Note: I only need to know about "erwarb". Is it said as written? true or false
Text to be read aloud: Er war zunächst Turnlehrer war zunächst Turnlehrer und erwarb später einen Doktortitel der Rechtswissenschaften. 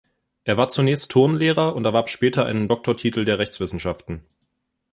true